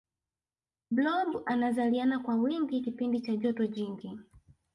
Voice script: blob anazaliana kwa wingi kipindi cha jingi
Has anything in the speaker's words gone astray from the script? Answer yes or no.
yes